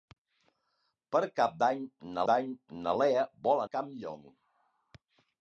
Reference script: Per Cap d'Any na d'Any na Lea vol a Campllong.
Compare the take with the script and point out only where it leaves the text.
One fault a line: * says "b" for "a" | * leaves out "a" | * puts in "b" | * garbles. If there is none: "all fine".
all fine